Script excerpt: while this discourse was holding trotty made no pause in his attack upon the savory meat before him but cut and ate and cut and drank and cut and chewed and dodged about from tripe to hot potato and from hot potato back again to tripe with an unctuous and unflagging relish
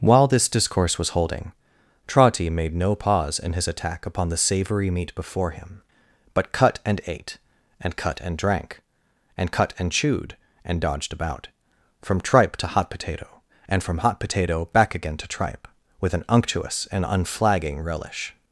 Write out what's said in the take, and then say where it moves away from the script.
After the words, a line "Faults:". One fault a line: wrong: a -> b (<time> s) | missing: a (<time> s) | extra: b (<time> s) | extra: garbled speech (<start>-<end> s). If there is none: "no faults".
while this discourse was holding trotty made no pause in his attack upon the savory meat before him but cut and ate and cut and drank and cut and chewed and dodged about from tripe to hot potato and from hot potato back again to tripe with an unctuous and unflagging relish
Faults:
no faults